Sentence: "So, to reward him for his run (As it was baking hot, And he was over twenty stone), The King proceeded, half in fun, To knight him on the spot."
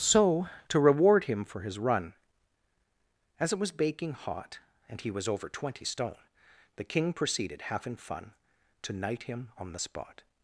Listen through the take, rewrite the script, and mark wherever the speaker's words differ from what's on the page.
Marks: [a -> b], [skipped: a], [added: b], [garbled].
"So, to reward him for his run (As it was baking hot, And he was over twenty stone), The King proceeded, half in fun, To knight him on the spot."